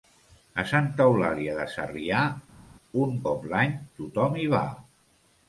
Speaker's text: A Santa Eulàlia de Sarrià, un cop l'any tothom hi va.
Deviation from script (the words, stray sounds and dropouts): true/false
false